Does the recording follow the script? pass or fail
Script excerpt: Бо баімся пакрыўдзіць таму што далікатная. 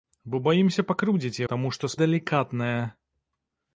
pass